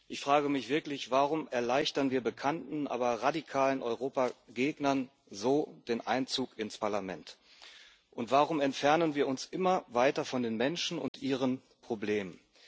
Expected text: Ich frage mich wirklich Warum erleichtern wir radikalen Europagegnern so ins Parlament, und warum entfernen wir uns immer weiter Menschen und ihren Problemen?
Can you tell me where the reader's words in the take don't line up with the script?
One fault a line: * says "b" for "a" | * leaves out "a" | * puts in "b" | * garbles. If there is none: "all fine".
* puts in "bekannten aber"
* puts in "den Einzug"
* puts in "von den"